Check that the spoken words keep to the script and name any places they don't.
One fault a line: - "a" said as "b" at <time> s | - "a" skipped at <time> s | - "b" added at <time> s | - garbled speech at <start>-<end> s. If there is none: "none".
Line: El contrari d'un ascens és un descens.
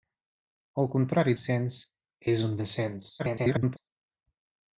- "d'un" skipped at 1.4 s
- garbled speech at 3.2-3.8 s